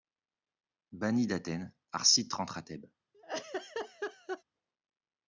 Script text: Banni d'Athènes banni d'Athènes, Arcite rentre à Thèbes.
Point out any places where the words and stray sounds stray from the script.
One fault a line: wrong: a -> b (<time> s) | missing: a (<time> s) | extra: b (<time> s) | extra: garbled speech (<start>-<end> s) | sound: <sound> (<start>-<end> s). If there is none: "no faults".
missing: banni d'Athènes (1.7 s)
sound: laugh (3.1-4.4 s)